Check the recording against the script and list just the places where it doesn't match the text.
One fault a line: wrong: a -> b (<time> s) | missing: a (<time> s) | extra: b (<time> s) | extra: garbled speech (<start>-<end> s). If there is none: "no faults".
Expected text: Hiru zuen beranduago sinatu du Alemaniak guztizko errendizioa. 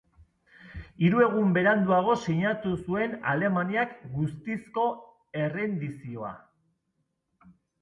wrong: zuen -> egun (1.2 s)
wrong: du -> zuen (2.8 s)